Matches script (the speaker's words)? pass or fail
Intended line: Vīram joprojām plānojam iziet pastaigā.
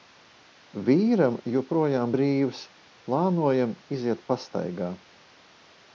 fail